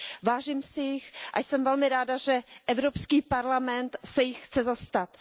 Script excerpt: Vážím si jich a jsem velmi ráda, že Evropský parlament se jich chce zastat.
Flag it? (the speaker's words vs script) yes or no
no